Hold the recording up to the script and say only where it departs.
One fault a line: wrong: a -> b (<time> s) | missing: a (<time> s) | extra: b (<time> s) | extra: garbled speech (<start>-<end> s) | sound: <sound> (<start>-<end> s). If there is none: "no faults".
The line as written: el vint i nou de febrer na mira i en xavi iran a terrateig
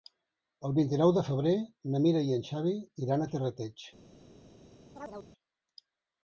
sound: chirp (5.0-5.3 s)